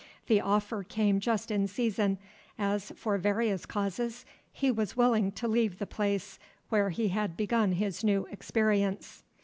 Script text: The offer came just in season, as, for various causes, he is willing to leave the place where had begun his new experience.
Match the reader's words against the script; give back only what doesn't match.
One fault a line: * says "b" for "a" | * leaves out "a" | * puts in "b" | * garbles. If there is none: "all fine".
* says "was" for "is"
* puts in "he"